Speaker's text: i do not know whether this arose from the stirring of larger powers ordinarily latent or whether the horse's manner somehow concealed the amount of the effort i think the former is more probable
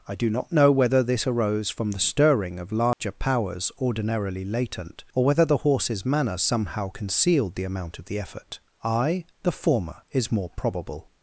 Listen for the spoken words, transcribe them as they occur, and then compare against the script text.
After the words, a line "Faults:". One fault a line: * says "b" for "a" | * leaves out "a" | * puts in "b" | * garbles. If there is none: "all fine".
i do not know whether this arose from the stirring of larger powers ordinarily latent or whether the horse's manner somehow concealed the amount of the effort i the former is more probable
Faults:
* leaves out "think"